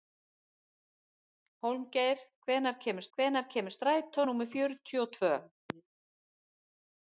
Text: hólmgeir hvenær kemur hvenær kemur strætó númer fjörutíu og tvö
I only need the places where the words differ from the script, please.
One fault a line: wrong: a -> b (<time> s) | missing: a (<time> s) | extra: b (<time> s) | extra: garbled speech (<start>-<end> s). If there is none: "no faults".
no faults